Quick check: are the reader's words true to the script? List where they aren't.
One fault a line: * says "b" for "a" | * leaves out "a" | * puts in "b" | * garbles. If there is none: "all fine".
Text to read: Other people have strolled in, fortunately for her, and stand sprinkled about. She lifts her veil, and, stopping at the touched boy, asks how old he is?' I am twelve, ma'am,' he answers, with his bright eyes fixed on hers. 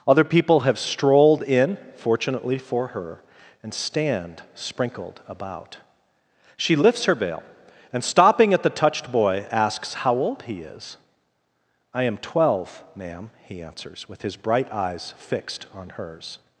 all fine